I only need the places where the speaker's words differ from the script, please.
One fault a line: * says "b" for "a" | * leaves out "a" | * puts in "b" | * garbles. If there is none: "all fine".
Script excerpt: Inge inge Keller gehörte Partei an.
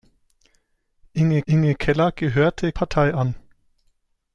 all fine